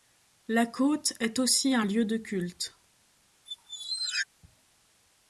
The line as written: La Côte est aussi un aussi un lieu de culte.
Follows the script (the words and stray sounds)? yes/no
no